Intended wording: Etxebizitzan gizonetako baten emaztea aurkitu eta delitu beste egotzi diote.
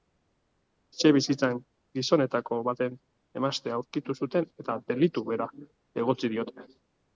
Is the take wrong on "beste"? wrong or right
wrong